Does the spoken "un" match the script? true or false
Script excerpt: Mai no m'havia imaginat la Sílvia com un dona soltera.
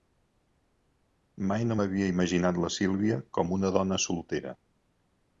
false